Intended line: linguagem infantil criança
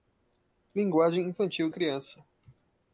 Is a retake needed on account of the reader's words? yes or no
no